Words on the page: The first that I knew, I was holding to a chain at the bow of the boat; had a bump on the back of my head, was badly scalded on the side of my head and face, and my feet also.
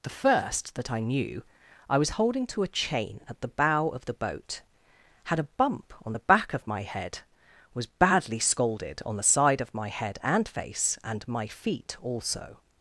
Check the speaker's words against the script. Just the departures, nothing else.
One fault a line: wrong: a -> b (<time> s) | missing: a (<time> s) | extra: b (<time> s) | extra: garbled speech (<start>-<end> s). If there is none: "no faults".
no faults